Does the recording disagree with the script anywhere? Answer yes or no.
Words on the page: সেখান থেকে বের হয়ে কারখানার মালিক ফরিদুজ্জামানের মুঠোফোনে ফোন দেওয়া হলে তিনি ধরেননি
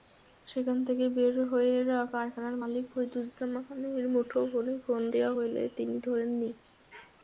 no